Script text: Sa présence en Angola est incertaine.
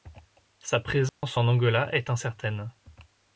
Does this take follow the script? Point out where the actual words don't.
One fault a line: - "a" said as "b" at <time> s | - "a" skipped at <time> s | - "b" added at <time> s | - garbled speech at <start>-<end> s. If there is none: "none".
none